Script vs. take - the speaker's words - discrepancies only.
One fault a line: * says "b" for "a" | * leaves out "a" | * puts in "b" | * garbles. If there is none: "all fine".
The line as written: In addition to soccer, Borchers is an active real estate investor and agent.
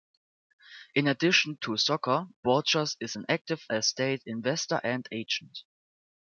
* leaves out "real"